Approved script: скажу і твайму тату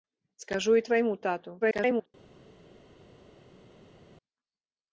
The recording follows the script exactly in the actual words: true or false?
false